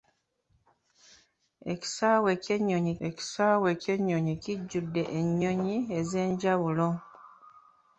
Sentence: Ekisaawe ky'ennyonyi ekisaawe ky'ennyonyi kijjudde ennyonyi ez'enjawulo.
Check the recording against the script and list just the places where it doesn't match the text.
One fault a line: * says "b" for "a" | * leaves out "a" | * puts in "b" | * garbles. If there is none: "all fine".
all fine